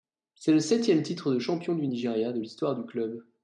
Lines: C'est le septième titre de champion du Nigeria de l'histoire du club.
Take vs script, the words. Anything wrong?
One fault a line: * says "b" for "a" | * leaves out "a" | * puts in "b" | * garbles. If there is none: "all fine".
all fine